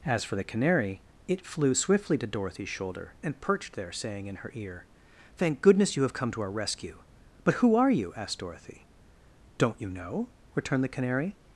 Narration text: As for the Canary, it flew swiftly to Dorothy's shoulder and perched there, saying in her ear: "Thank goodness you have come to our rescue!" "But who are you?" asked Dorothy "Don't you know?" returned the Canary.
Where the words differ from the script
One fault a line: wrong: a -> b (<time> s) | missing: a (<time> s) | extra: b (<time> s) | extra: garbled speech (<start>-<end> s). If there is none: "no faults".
no faults